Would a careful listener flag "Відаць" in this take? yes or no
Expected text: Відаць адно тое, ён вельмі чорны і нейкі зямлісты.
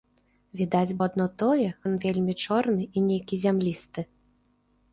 no